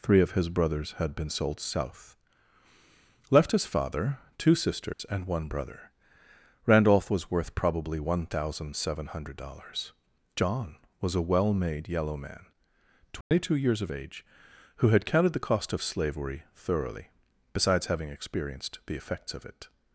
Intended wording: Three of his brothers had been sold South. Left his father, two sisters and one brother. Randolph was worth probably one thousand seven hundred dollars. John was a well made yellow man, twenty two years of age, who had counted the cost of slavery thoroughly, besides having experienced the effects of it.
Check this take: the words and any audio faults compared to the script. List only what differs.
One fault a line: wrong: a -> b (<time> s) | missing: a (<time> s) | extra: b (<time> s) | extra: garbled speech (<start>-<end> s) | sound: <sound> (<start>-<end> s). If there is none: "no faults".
sound: dropout (4.9-5.0 s)
sound: dropout (13.2-13.3 s)